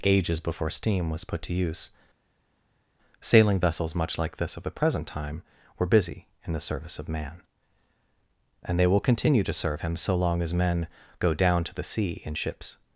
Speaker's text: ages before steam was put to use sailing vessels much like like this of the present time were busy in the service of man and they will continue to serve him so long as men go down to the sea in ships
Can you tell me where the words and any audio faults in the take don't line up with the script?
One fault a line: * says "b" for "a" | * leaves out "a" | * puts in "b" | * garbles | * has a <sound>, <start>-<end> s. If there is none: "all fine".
* leaves out "like"